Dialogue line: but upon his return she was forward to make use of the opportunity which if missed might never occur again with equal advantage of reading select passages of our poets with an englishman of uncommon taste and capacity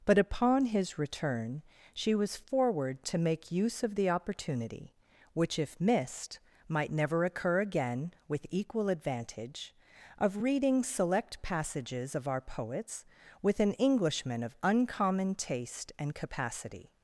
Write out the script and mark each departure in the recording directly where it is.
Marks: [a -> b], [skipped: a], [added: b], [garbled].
but upon his return she was forward to make use of the opportunity which if missed might never occur again with equal advantage of reading select passages of our poets with an englishman of uncommon taste and capacity